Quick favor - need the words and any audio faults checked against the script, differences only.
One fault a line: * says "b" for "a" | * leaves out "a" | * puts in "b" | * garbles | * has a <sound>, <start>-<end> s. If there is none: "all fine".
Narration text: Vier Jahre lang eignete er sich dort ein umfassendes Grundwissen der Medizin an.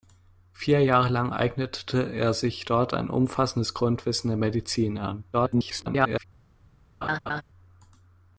* garbles
* has a laugh, 7.0-7.4 s